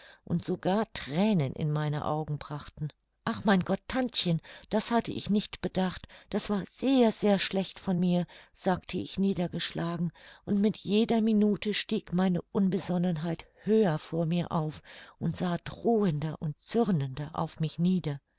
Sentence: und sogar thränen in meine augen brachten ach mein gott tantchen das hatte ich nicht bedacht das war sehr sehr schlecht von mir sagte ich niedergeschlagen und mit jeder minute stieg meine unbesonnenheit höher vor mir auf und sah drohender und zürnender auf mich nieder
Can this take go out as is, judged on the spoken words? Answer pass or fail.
pass